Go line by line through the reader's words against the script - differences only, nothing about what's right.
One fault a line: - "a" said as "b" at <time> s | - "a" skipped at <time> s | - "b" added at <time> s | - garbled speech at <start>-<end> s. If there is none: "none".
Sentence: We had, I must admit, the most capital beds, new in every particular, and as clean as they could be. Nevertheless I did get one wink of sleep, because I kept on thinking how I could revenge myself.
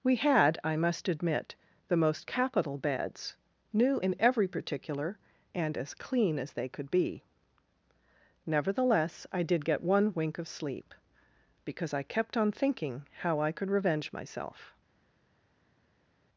none